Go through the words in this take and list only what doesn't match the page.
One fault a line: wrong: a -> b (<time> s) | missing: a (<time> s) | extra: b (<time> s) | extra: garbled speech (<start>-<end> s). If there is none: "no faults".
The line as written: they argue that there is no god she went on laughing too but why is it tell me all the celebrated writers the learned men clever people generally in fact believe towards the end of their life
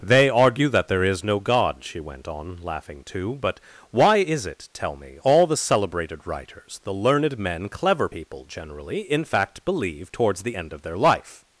no faults